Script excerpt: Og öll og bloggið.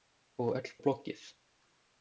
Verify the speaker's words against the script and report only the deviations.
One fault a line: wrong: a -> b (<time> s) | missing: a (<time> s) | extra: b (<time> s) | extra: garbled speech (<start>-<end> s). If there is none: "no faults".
no faults